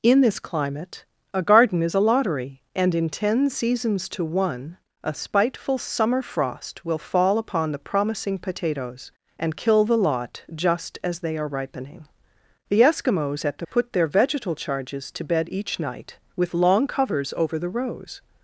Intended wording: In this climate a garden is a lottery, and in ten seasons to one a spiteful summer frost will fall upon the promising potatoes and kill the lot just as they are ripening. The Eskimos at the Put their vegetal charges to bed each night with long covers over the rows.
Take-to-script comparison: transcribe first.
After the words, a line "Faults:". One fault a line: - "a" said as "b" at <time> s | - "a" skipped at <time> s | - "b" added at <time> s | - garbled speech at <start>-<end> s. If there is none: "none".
In this climate a garden is a lottery, and in ten seasons to one a spiteful summer frost will fall upon the promising potatoes and kill the lot just as they are ripening. The Eskimos at the Put their vegetal charges to bed each night with long covers over the rows.
Faults:
none